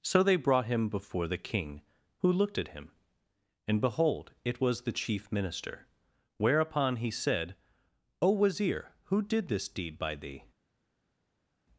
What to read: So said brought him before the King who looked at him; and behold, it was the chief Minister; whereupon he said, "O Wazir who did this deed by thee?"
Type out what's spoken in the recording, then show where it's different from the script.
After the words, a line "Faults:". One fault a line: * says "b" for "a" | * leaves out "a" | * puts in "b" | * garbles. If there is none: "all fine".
So they brought him before the King who looked at him; and behold, it was the chief Minister; whereupon he said, "O Wazir who did this deed by thee?"
Faults:
* says "they" for "said"